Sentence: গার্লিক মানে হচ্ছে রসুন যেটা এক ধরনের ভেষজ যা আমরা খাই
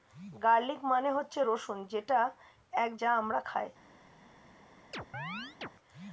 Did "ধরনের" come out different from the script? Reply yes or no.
yes